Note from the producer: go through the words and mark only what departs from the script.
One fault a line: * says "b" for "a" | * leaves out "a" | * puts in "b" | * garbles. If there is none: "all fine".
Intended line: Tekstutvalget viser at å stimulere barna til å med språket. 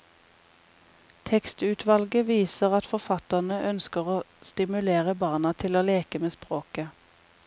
* puts in "forfatterne ønsker"
* puts in "leke"